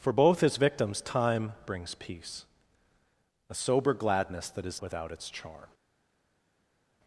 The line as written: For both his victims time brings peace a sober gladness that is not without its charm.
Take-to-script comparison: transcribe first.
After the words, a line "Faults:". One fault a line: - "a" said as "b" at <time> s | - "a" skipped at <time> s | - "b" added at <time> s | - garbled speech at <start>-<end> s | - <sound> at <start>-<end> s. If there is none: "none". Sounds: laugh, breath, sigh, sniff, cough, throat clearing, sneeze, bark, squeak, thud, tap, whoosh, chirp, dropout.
For both his victims time brings peace a sober gladness that is without its charm.
Faults:
- "not" skipped at 4.8 s